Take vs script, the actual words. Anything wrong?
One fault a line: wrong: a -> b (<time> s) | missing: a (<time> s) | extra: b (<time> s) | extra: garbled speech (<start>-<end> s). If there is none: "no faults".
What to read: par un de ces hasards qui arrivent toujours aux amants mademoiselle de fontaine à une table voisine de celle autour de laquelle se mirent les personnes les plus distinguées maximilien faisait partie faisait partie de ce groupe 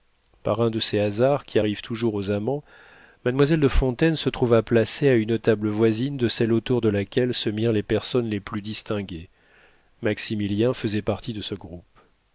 extra: se trouva placée (4.1 s)
missing: faisait partie (11.3 s)